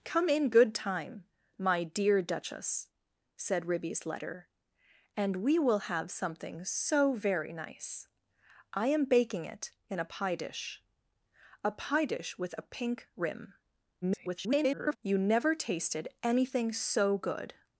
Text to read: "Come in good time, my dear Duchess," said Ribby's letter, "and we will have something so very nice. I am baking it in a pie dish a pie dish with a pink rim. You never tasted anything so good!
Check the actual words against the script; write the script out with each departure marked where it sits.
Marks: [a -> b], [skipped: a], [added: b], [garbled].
"Come in good time, my dear Duchess," said Ribby's letter, "and we will have something so very nice. I am baking it in a pie dish a pie dish with a pink rim. [garbled] You never tasted anything so good!